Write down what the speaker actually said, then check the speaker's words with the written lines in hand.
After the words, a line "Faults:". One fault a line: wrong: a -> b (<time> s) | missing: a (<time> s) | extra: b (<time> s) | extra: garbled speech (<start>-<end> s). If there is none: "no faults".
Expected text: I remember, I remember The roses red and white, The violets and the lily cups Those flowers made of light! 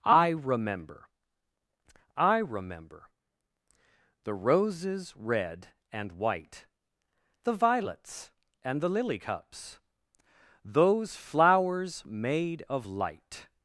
I remember, I remember The roses red and white, The violets and the lily cups Those flowers made of light!
Faults:
no faults